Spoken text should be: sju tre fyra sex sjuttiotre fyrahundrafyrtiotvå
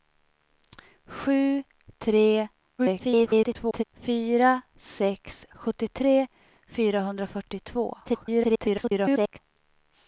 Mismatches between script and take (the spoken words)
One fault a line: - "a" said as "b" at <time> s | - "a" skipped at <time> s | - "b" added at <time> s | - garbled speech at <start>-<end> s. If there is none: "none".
- garbled speech at 2.8-3.8 s
- garbled speech at 8.0-9.4 s